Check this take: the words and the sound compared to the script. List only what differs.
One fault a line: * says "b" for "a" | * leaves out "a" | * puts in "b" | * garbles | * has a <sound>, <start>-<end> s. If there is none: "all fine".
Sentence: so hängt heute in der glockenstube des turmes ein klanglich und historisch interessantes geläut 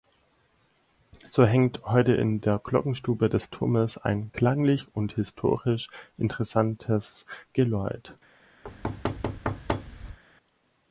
* has a thud, 8.6-10.2 s